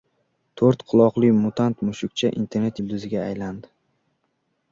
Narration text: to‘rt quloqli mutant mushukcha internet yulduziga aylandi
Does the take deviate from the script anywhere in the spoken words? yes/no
no